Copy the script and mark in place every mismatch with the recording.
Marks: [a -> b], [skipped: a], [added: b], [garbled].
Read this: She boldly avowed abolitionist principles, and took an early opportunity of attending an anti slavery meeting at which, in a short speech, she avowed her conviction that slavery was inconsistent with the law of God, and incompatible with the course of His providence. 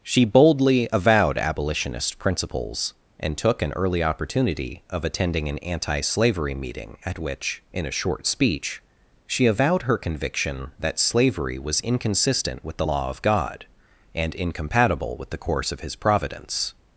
She boldly avowed abolitionist principles, and took an early opportunity of attending an anti slavery meeting at which, in a short speech, she avowed her conviction that slavery was inconsistent with the law of God, and incompatible with the course of His providence.